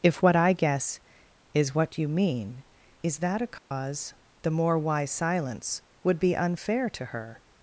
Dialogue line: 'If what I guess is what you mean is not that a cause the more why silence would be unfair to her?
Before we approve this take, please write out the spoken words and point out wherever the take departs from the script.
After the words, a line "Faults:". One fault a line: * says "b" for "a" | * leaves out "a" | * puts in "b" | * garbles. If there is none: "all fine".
'If what I guess is what you mean is that a cause the more why silence would be unfair to her?
Faults:
* leaves out "not"